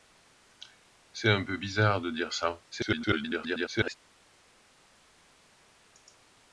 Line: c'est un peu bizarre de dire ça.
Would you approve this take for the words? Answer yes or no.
no